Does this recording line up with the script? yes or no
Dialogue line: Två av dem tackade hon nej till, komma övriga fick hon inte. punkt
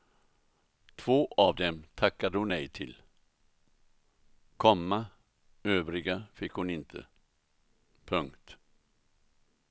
yes